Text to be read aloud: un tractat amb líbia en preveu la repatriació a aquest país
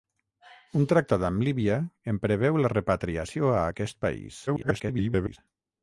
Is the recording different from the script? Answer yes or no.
yes